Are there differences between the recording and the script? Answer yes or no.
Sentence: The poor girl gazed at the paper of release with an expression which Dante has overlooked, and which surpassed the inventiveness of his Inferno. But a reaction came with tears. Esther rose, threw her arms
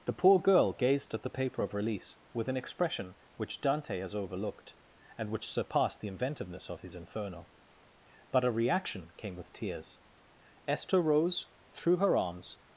no